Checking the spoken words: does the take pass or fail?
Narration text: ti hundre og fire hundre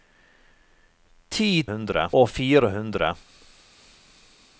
pass